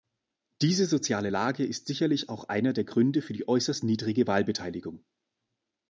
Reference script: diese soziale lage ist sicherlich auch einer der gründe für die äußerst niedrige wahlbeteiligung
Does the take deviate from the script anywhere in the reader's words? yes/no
no